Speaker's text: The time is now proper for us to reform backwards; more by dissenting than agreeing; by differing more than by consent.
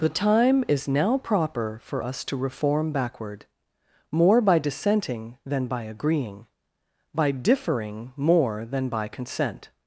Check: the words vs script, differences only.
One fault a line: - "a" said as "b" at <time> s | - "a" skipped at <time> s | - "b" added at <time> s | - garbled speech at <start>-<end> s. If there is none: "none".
- "backwards" said as "backward" at 2.9 s
- "by" added at 5.7 s